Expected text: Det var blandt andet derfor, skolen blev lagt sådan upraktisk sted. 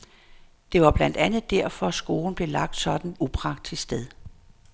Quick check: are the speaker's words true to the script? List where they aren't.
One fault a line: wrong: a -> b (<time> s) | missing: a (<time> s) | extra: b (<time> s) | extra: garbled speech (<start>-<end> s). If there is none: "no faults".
no faults